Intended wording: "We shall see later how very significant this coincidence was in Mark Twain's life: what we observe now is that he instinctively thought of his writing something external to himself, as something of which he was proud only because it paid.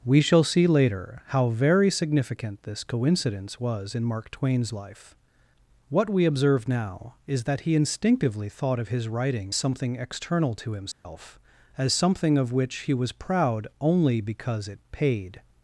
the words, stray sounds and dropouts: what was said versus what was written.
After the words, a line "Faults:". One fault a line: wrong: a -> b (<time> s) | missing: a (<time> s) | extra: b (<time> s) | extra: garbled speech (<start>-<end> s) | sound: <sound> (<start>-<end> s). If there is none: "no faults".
"We shall see later how very significant this coincidence was in Mark Twain's life: what we observe now is that he instinctively thought of his writing something external to himself, as something of which he was proud only because it paid.
Faults:
sound: dropout (10.9-11.1 s)